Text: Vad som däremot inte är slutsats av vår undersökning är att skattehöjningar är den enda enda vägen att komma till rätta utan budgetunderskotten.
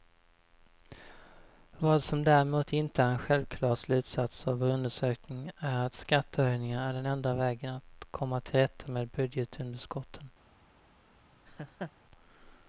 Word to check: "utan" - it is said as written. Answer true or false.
false